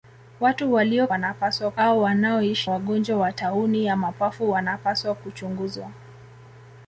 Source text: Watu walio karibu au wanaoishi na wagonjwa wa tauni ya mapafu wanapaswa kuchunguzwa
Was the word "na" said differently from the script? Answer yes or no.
yes